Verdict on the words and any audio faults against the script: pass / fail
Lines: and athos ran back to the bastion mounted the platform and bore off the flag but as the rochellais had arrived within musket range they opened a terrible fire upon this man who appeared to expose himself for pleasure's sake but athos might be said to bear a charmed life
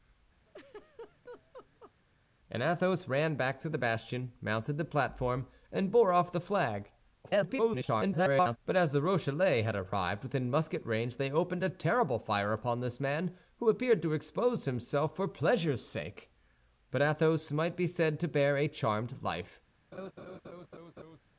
fail